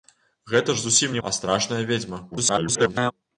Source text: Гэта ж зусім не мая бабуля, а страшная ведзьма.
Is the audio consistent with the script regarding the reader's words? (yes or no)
no